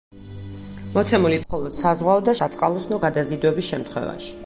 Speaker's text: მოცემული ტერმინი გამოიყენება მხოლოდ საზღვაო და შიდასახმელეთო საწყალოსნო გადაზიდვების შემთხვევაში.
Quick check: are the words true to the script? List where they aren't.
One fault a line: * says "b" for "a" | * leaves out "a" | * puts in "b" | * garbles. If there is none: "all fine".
* leaves out "ტერმინი გამოიყენება"
* leaves out "შიდასახმელეთო"